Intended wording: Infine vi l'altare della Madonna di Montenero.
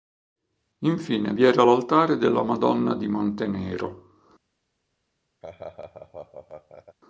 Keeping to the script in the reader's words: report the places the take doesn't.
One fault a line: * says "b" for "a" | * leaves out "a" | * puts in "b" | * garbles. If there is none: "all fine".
* puts in "era"